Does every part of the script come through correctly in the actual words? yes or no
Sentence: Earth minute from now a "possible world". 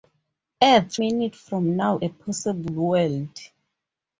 yes